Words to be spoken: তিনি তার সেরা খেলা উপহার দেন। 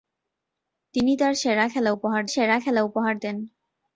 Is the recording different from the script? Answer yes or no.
yes